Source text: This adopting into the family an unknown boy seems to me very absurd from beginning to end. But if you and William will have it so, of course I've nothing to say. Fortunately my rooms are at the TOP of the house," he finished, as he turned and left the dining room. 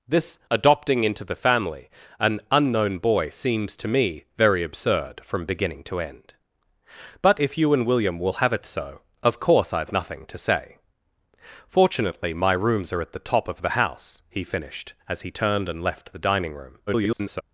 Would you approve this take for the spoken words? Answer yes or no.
no